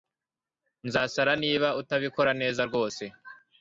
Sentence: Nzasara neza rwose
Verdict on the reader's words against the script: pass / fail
fail